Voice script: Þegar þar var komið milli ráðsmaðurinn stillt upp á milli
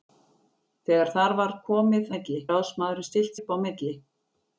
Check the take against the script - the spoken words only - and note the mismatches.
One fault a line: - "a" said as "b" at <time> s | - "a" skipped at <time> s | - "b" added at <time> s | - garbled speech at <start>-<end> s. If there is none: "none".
none